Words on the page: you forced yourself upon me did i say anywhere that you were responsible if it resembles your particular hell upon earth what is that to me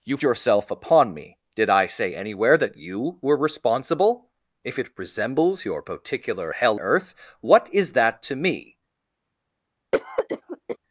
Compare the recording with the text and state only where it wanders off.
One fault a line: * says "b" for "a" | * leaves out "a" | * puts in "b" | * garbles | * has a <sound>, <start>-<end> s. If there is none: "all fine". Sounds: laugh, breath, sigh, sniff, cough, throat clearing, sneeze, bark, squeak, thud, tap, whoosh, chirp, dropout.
* leaves out "forced"
* leaves out "upon"
* has a cough, 9.9-10.8 s